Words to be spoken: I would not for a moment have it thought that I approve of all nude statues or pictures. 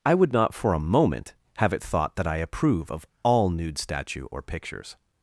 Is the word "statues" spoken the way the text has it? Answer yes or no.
no